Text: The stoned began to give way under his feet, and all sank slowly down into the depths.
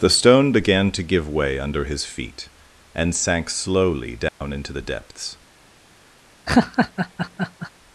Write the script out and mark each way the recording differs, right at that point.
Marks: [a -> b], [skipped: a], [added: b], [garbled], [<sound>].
The [stoned -> stone] began to give way under his feet, and [skipped: all] sank slowly down [dropout] into the depths. [laugh]